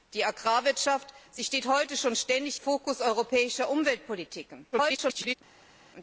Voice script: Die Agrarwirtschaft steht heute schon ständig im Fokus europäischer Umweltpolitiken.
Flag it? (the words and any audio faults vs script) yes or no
yes